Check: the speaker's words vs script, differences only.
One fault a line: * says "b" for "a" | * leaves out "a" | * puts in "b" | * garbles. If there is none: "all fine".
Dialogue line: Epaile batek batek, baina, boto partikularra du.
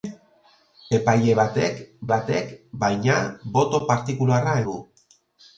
all fine